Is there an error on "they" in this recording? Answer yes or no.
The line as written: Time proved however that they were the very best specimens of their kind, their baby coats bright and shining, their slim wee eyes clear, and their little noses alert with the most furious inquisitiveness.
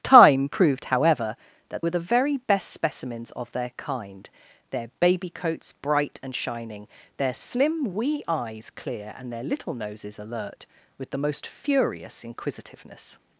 yes